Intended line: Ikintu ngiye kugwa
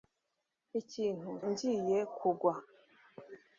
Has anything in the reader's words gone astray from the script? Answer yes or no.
no